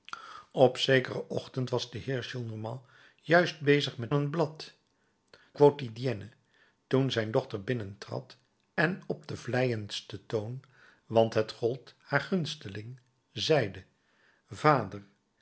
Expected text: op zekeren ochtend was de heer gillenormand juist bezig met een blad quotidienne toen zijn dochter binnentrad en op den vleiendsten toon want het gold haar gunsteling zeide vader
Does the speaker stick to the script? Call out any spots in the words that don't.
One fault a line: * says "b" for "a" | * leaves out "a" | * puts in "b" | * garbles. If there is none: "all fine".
all fine